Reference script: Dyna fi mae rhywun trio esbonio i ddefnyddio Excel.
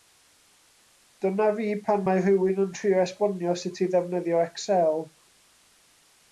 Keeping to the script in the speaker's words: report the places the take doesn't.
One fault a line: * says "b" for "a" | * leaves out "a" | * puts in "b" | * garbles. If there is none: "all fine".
* puts in "pan"
* puts in "yn"
* puts in "sut"